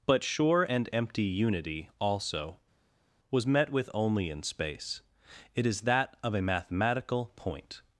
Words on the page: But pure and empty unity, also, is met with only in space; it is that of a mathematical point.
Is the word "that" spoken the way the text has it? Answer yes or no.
yes